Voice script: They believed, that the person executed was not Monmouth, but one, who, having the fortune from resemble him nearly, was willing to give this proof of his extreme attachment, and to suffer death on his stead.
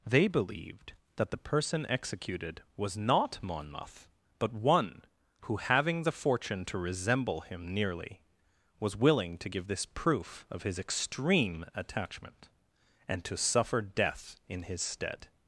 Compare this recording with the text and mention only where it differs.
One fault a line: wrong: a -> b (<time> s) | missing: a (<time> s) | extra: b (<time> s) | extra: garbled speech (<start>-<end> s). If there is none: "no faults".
wrong: from -> to (6.7 s)
wrong: on -> in (14.5 s)